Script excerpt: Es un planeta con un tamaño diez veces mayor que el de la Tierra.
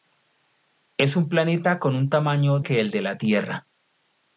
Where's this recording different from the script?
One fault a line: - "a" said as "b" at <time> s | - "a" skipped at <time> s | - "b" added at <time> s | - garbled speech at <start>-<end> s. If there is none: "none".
- "diez veces mayor" skipped at 2.6 s